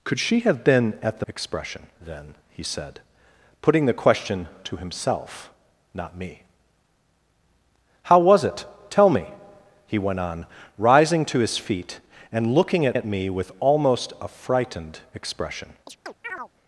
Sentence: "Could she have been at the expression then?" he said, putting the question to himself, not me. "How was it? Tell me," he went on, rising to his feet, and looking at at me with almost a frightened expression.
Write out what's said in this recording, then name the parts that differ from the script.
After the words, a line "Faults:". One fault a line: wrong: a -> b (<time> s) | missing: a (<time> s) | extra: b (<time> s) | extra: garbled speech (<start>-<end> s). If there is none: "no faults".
"Could she have been at the expression then?" he said, putting the question to himself, not me. "How was it? Tell me," he went on, rising to his feet, and looking at at me with almost a frightened expression.
Faults:
no faults